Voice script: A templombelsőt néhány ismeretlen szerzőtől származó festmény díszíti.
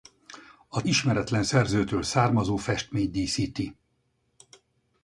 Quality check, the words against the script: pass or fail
fail